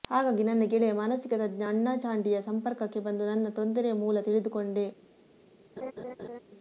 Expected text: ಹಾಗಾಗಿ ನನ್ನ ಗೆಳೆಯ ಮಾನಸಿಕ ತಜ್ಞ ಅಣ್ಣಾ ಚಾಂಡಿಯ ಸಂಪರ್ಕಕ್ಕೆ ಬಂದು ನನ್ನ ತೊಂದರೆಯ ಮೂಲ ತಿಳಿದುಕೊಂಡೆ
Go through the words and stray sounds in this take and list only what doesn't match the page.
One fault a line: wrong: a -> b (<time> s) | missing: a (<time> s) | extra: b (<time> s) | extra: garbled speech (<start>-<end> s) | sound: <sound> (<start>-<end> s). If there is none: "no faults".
sound: laugh (5.8-6.4 s)